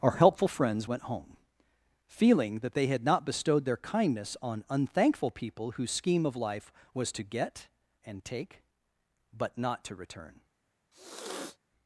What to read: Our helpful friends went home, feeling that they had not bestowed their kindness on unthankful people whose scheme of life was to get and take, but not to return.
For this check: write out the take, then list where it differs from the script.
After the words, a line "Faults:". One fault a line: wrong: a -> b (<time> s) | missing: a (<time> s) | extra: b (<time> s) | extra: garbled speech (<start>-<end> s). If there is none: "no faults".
Our helpful friends went home, feeling that they had not bestowed their kindness on unthankful people whose scheme of life was to get and take, but not to return.
Faults:
no faults